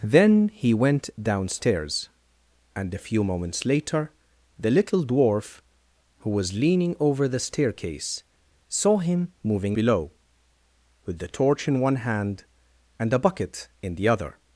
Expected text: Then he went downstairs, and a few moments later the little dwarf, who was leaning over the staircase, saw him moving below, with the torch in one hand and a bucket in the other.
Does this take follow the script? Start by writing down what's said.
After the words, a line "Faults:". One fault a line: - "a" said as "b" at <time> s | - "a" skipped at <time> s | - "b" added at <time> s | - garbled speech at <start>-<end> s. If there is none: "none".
Then he went downstairs, and a few moments later the little dwarf, who was leaning over the staircase, saw him moving below, with the torch in one hand and a bucket in the other.
Faults:
none